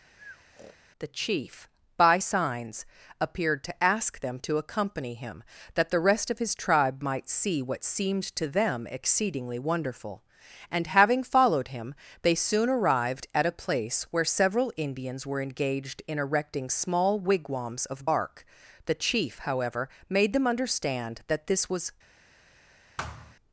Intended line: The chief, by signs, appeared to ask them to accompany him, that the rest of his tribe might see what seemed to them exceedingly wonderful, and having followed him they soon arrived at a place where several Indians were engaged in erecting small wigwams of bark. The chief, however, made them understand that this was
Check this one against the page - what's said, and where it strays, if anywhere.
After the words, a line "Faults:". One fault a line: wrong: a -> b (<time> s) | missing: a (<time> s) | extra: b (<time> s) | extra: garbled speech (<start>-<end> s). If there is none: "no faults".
The chief, by signs, appeared to ask them to accompany him, that the rest of his tribe might see what seemed to them exceedingly wonderful, and having followed him they soon arrived at a place where several Indians were engaged in erecting small wigwams of bark. The chief, however, made them understand that this was
Faults:
no faults